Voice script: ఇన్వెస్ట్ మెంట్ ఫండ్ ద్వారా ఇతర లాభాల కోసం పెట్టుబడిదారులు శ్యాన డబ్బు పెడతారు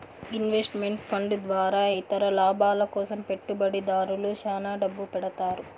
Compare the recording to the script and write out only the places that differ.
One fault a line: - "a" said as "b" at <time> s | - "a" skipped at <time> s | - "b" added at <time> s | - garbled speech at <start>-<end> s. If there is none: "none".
none